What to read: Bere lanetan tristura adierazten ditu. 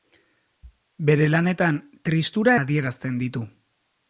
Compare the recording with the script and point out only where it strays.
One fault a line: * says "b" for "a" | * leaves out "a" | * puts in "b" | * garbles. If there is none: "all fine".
all fine